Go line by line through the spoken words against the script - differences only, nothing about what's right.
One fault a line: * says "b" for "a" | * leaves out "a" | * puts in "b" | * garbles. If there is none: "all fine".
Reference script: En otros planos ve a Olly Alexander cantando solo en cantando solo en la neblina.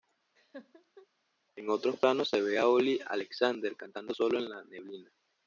* puts in "se"
* leaves out "cantando solo en"